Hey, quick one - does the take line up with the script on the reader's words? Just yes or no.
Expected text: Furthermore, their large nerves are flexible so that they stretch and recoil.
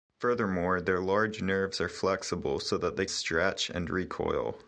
yes